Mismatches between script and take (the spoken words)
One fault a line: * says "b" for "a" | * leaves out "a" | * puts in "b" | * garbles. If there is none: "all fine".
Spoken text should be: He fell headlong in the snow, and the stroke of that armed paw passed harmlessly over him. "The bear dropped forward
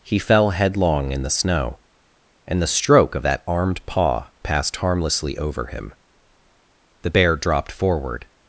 all fine